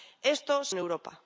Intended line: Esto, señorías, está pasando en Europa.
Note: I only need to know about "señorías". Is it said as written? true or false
false